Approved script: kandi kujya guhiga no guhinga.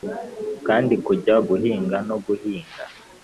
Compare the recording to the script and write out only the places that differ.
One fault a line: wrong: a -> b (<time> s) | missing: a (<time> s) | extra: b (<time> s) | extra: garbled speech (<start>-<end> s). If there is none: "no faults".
no faults